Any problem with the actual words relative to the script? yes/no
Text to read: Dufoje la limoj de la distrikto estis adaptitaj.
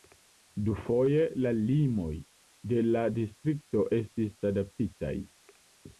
no